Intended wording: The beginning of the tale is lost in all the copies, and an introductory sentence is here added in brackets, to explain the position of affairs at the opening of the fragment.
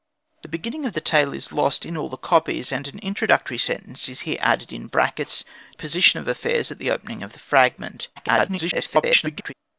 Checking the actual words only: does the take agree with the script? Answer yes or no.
no